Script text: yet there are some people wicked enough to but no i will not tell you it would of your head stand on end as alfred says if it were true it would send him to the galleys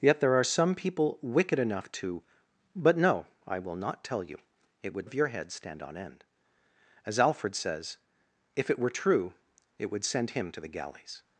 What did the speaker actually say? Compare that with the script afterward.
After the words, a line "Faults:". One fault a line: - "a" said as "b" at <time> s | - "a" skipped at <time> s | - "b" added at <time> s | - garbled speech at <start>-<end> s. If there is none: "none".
yet there are some people wicked enough to but no i will not tell you it would of your head stand on end as alfred says if it were true it would send him to the galleys
Faults:
none